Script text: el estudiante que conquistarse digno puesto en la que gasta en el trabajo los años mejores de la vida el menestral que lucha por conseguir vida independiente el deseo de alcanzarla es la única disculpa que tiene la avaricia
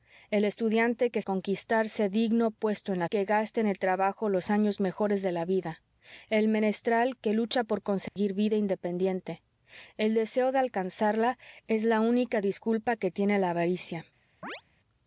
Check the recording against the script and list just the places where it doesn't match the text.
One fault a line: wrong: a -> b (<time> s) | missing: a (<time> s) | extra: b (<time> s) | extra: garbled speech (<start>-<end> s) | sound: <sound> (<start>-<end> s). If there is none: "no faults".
sound: dropout (8.1-8.2 s)
sound: chirp (14.4-14.6 s)